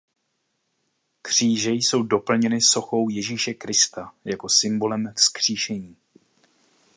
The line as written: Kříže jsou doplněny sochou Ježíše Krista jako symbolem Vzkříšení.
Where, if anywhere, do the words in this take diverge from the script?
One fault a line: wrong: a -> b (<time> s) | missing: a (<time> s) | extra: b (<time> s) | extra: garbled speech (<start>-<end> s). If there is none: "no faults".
no faults